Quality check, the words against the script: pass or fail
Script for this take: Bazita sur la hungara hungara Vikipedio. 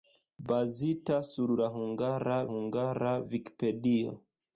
pass